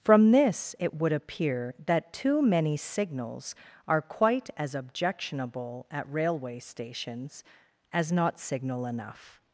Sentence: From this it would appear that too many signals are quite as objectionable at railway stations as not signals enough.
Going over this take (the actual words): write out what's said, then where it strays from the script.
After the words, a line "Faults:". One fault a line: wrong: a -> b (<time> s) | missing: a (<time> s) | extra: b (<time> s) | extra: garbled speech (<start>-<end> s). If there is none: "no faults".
From this it would appear that too many signals are quite as objectionable at railway stations as not signal enough.
Faults:
wrong: signals -> signal (8.4 s)